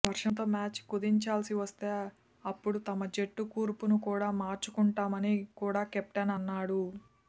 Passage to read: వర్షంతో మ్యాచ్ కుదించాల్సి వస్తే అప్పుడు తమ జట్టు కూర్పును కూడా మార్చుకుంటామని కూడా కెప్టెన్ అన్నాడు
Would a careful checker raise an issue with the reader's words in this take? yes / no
no